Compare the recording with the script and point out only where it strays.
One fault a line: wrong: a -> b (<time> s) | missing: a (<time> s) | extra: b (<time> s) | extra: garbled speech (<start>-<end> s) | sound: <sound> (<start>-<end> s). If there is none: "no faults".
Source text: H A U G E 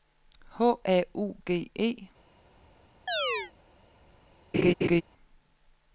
sound: chirp (3.1-3.5 s)
sound: laugh (4.5-5.0 s)